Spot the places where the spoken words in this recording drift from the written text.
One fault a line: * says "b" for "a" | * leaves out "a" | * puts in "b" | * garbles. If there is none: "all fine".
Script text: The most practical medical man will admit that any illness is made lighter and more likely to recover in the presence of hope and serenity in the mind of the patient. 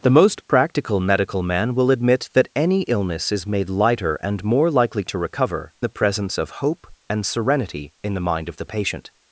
* leaves out "in"